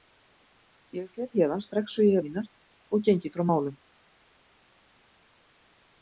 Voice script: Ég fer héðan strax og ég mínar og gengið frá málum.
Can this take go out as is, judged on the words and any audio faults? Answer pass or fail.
pass